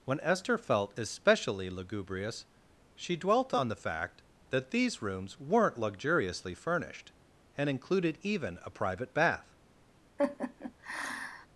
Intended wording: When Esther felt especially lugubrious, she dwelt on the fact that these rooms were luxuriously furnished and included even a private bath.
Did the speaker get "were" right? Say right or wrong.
wrong